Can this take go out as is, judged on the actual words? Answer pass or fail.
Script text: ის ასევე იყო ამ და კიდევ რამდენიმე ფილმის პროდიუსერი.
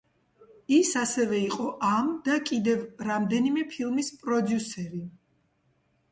pass